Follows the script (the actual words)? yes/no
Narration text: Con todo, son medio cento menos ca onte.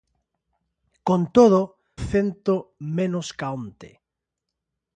no